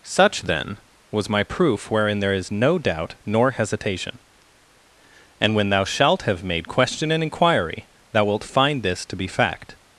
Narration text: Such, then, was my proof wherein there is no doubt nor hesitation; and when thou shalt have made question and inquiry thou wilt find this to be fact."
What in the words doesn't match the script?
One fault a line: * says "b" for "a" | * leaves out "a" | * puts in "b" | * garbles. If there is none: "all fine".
all fine